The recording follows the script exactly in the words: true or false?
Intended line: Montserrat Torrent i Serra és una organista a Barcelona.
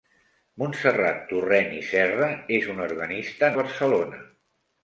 true